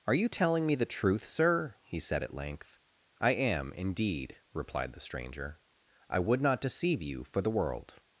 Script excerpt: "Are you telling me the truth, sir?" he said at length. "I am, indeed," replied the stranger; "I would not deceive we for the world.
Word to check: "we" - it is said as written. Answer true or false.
false